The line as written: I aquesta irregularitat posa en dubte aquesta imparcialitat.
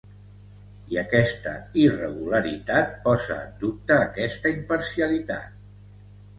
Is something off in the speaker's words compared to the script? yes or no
no